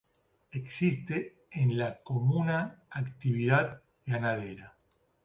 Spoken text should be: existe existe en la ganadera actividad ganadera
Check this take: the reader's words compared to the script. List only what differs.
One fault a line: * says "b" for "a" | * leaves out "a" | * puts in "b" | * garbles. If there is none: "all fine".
* leaves out "existe"
* says "comuna" for "ganadera"